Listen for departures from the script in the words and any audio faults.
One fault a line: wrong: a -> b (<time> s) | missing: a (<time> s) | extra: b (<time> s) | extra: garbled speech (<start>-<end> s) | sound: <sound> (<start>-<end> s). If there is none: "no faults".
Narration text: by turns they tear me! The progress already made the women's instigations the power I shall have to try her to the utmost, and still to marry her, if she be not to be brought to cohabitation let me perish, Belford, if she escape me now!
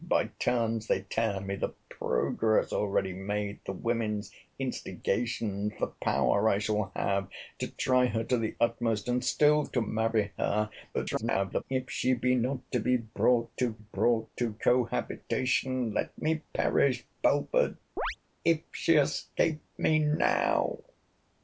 extra: garbled speech (10.9-11.6 s)
extra: brought to (13.8 s)
sound: chirp (18.0-18.2 s)